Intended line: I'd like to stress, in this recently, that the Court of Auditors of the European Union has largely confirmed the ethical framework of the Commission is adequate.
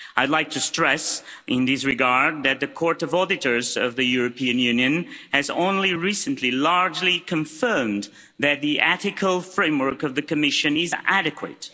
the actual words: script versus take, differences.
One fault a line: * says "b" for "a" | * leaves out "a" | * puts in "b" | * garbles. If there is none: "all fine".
* says "regard" for "recently"
* puts in "only recently"
* puts in "that"